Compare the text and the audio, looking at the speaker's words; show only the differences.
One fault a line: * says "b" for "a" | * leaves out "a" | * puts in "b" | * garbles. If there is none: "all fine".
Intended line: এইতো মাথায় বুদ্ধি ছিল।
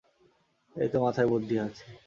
* says "আছে" for "ছিল"